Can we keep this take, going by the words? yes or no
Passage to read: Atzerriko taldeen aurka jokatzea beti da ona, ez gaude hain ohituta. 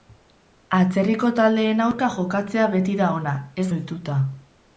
no